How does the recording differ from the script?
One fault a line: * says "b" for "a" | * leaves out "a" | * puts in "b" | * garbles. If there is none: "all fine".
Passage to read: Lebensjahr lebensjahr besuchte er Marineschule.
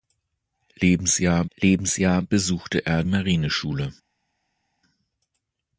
all fine